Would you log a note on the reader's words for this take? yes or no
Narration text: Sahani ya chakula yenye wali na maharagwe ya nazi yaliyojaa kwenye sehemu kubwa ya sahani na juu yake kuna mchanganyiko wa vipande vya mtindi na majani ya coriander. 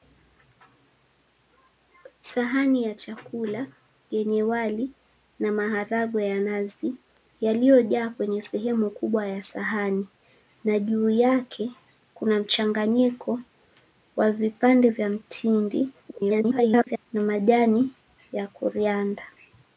yes